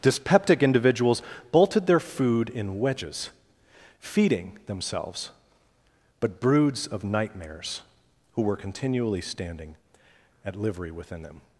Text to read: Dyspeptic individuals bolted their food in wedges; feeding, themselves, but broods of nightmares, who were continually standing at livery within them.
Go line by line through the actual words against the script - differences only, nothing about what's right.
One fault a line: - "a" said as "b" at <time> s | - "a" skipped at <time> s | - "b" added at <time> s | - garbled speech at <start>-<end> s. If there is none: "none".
none